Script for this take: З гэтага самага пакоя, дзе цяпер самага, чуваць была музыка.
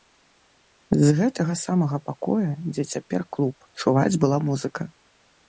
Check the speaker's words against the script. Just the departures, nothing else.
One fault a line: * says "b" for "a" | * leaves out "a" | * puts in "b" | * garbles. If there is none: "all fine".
* says "клуб" for "самага"